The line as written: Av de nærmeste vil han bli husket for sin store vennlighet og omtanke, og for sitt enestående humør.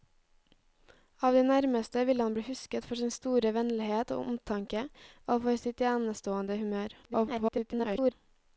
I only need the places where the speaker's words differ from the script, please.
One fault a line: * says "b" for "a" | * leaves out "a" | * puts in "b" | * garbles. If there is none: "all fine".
* garbles